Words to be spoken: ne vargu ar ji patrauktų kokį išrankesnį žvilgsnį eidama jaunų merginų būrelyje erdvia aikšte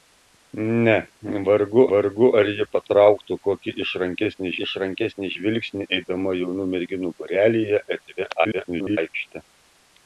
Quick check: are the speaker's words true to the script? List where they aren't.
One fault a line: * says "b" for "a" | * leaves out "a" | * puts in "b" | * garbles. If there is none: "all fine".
* puts in "vargu"
* puts in "išrankesnį"
* garbles